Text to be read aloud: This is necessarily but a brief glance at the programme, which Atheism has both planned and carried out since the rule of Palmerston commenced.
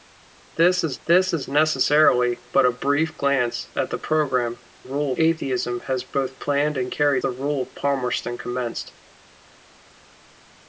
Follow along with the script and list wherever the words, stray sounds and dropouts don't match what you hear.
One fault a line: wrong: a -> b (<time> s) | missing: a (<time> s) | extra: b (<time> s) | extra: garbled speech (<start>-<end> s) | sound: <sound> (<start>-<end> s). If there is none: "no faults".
extra: this is (1.1 s)
wrong: which -> rule (4.8 s)
missing: out since (7.2 s)